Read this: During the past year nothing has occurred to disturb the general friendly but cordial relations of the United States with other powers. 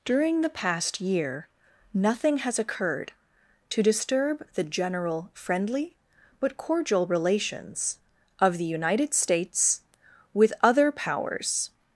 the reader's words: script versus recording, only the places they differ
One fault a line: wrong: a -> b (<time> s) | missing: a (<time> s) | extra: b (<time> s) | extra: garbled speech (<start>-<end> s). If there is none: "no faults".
no faults